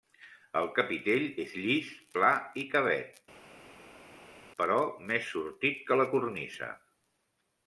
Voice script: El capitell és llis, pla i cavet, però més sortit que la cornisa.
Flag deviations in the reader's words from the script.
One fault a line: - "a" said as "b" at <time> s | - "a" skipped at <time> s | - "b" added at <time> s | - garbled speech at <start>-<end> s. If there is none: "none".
none